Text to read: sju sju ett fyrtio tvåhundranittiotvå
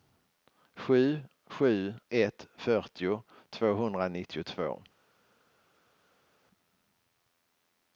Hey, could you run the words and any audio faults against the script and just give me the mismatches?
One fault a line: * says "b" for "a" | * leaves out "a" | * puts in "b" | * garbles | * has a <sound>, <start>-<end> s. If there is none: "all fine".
all fine